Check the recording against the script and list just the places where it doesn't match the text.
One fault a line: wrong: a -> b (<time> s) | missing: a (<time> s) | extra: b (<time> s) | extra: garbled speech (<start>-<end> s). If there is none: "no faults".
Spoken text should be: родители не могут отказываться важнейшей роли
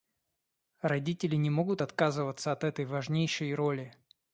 extra: от этой (2.5 s)